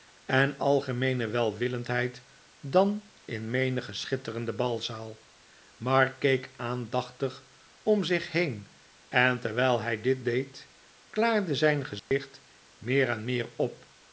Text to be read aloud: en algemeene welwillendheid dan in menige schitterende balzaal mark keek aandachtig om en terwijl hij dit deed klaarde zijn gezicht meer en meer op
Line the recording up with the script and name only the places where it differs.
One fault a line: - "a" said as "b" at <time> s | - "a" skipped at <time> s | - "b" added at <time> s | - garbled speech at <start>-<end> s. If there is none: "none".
- "zich heen" added at 8.0 s